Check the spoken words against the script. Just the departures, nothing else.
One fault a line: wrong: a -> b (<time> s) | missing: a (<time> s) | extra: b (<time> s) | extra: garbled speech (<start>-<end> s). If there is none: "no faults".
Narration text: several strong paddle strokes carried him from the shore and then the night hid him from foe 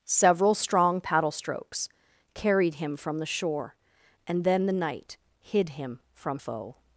no faults